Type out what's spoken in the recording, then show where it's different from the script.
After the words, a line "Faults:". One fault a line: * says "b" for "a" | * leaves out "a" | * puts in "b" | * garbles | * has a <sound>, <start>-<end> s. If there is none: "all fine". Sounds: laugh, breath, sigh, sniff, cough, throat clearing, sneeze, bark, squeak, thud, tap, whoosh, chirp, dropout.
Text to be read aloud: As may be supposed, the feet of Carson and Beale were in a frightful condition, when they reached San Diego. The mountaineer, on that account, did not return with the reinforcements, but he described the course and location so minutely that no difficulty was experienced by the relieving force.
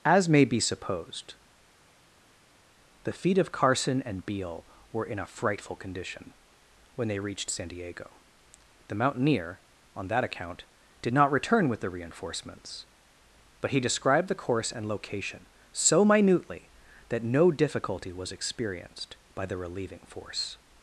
As may be supposed, the feet of Carson and Beale were in a frightful condition, when they reached San Diego. The mountaineer, on that account, did not return with the reinforcements, but he described the course and location so minutely that no difficulty was experienced by the relieving force.
Faults:
all fine